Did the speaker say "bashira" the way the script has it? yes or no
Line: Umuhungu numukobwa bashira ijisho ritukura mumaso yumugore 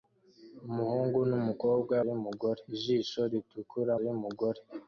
no